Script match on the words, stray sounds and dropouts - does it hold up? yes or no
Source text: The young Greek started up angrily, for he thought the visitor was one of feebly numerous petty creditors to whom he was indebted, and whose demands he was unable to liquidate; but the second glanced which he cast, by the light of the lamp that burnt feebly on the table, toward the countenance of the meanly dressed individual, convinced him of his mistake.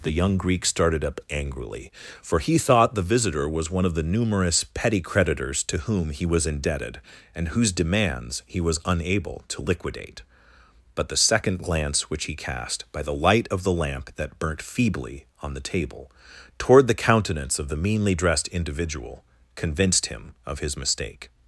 no